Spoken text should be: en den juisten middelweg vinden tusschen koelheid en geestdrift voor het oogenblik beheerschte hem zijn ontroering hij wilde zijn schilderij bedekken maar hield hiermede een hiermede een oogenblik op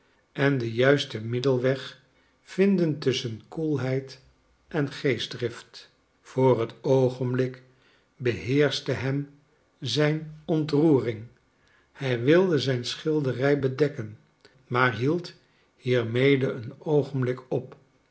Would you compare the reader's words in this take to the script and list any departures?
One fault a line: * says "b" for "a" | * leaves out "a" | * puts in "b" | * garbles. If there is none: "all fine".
* leaves out "hiermede een"